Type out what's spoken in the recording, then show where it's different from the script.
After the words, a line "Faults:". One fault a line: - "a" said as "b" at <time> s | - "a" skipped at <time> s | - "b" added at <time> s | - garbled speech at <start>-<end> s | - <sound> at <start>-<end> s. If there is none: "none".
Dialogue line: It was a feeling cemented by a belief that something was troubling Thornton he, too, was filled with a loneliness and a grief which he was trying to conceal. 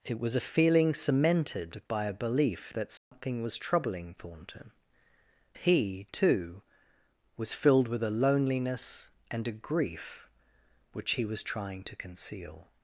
It was a feeling cemented by a belief that something was troubling Thornton he, too, was filled with a loneliness and a grief which he was trying to conceal.
Faults:
- dropout at 3.0-3.1 s